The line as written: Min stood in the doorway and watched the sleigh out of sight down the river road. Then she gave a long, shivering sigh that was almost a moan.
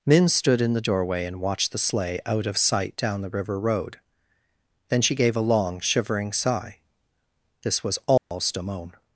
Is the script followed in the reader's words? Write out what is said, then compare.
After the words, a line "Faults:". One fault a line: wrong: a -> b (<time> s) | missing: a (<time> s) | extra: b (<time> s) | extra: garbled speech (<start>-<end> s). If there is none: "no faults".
Min stood in the doorway and watched the sleigh out of sight down the river road. Then she gave a long, shivering sigh this was almost a moan.
Faults:
wrong: that -> this (7.6 s)